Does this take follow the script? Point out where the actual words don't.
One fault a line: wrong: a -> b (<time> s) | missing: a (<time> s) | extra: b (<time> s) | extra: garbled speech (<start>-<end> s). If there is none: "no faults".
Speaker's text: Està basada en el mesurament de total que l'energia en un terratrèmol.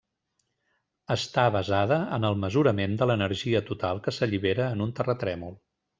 extra: l'energia (3.1 s)
wrong: l'energia -> s'allibera (4.2 s)